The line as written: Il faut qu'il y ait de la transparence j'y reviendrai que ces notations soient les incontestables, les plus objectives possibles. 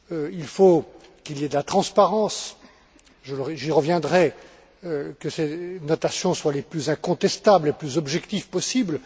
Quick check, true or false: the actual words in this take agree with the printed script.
false